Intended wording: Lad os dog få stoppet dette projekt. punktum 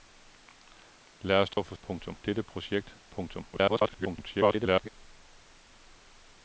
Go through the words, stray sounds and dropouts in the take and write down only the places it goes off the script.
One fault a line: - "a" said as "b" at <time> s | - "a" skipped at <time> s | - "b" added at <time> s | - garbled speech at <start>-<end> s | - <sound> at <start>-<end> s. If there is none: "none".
- dropout at 1.5-1.6 s
- "stoppet" said as "punktum" at 1.8 s
- garbled speech at 3.5-4.9 s